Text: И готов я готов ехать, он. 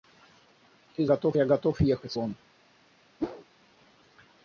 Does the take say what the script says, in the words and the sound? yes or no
no